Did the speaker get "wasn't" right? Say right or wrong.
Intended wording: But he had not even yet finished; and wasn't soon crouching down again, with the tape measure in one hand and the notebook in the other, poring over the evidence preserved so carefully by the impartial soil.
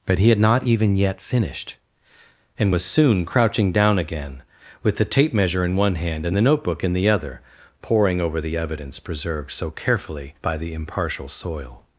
wrong